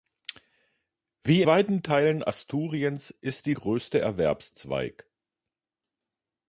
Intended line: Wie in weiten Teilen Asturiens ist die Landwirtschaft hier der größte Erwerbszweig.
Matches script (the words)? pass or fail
fail